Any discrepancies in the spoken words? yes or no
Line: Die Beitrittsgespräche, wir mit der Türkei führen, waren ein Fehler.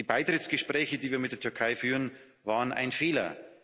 yes